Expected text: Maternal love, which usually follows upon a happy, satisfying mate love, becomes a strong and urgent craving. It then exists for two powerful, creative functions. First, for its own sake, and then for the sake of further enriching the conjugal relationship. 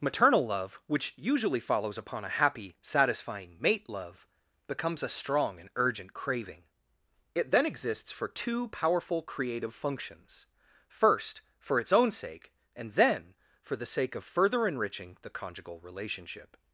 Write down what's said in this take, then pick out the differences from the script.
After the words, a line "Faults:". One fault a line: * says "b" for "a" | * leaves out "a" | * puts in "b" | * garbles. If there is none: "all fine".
Maternal love, which usually follows upon a happy, satisfying mate love, becomes a strong and urgent craving. It then exists for two powerful, creative functions. First, for its own sake, and then for the sake of further enriching the conjugal relationship.
Faults:
all fine